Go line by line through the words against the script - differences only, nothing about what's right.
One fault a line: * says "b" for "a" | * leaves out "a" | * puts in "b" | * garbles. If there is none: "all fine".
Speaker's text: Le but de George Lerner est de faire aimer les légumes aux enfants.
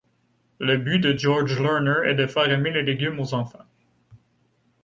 all fine